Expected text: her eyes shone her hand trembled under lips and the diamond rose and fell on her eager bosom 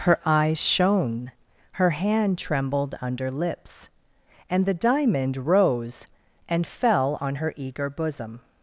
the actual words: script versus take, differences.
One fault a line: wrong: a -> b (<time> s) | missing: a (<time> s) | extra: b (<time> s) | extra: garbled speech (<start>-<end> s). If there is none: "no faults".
no faults